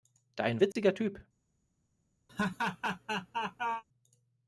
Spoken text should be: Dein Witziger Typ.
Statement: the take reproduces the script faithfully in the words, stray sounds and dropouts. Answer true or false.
false